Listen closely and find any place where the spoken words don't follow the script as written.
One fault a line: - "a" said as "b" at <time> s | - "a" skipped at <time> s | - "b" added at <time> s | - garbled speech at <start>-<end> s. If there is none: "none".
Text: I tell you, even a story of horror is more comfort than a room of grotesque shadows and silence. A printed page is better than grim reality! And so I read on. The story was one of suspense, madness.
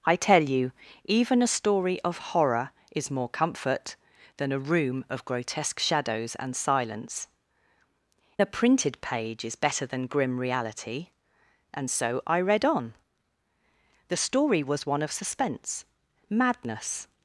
none